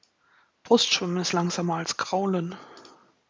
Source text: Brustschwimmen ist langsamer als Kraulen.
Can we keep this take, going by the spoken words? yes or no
yes